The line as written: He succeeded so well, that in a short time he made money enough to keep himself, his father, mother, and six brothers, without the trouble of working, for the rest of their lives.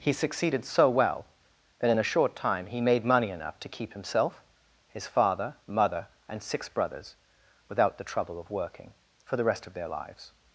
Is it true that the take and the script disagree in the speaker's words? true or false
false